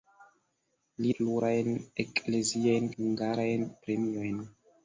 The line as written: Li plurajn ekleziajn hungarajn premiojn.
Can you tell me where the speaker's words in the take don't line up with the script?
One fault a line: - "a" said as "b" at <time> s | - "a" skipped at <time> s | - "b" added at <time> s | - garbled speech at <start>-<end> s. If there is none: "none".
none